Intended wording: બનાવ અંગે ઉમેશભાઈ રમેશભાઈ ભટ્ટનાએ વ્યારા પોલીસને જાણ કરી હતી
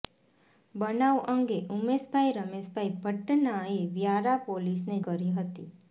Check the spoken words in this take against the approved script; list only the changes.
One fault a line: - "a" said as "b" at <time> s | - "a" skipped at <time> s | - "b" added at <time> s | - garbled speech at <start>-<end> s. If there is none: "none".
- "જાણ" skipped at 5.0 s